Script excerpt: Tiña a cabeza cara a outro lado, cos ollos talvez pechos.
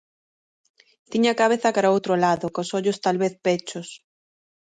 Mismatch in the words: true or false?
false